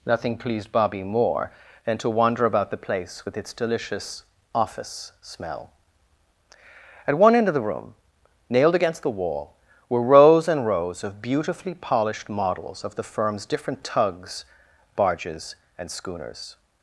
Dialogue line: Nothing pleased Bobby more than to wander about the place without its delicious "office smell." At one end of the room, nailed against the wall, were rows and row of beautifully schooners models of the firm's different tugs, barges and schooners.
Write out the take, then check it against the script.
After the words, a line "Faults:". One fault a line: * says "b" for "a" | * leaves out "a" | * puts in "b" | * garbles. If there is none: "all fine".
Nothing pleased Bobby more than to wander about the place with its delicious "office smell." At one end of the room, nailed against the wall, were rows and rows of beautifully polished models of the firm's different tugs, barges and schooners.
Faults:
* says "with" for "without"
* says "rows" for "row"
* says "polished" for "schooners"